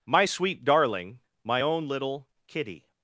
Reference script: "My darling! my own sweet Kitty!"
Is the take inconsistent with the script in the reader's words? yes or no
yes